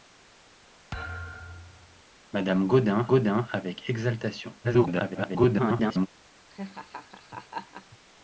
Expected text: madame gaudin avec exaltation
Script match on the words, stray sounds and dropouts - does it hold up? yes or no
no